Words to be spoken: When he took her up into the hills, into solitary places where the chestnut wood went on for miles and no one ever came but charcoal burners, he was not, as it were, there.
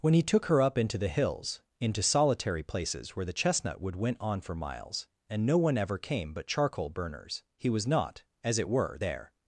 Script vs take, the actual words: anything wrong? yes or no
no